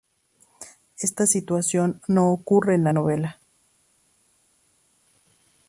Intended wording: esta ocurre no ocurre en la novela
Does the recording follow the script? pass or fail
fail